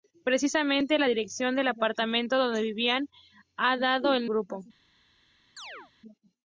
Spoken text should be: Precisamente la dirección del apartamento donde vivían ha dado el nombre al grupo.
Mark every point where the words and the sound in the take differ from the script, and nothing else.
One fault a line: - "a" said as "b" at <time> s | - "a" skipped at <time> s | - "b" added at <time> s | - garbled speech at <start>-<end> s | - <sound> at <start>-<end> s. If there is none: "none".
- "nombre al" skipped at 4.3 s
- chirp at 5.6-5.9 s